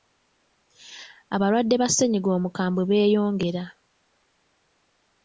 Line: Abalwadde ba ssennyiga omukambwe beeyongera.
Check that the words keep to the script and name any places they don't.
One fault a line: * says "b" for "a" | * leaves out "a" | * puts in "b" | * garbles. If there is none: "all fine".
all fine